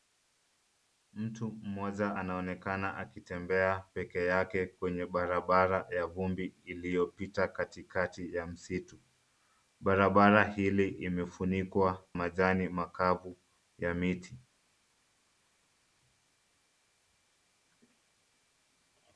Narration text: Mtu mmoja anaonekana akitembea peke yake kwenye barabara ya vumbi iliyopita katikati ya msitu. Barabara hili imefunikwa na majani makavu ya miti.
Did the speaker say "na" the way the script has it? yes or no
no